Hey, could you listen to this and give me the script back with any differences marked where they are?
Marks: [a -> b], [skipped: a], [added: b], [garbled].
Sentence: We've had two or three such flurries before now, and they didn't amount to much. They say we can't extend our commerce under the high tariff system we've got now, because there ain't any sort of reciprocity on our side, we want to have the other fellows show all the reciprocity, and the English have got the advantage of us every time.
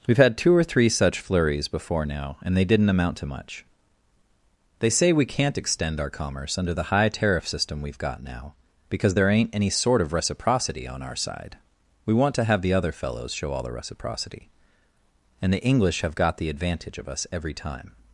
We've had two or three such flurries before now, and they didn't amount to much. They say we can't extend our commerce under the high tariff system we've got now, because there ain't any sort of reciprocity on our side, we want to have the other fellows show all the reciprocity, and the English have got the advantage of us every time.